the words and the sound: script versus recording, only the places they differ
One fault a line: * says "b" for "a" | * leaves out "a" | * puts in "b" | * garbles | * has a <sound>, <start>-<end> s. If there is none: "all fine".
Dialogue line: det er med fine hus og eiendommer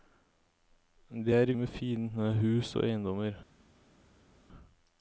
all fine